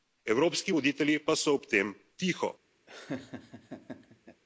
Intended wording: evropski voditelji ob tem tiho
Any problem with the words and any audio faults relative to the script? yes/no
yes